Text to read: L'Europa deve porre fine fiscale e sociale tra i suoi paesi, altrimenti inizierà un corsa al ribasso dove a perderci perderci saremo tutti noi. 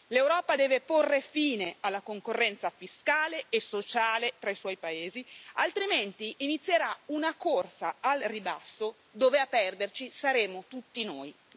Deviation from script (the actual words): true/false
true